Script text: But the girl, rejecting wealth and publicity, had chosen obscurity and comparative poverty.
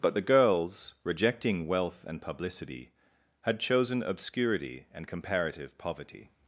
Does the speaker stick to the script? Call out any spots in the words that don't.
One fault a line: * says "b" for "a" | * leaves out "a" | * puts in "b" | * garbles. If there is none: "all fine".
* says "girls" for "girl"